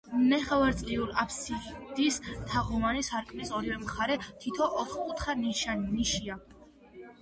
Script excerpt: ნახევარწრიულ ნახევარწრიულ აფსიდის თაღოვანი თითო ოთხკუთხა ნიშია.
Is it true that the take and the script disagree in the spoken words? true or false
true